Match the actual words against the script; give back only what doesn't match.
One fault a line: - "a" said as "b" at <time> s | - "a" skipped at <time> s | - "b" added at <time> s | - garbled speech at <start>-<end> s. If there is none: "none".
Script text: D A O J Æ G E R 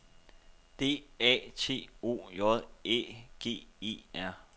- "T" added at 1.6 s